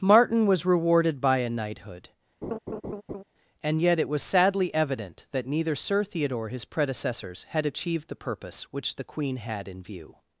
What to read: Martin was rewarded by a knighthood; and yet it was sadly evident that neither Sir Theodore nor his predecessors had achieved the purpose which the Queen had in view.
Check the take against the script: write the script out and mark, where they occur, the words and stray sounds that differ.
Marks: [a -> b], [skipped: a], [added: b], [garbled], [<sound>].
Martin was rewarded by a knighthood; [laugh] and yet it was sadly evident that neither Sir Theodore [skipped: nor] his predecessors had achieved the purpose which the Queen had in view.